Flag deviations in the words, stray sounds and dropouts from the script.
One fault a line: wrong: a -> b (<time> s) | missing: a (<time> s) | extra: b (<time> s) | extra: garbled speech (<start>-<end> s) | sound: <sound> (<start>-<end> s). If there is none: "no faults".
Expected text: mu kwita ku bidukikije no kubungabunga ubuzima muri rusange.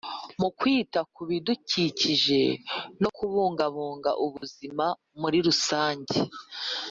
sound: dropout (4.4-4.4 s)